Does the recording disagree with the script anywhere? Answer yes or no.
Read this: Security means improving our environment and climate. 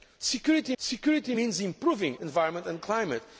yes